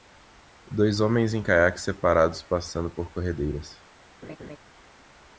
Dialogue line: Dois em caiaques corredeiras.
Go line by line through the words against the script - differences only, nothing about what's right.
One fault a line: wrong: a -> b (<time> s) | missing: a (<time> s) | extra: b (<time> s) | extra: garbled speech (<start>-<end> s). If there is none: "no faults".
extra: homens (1.0 s)
extra: separados passando por (1.8 s)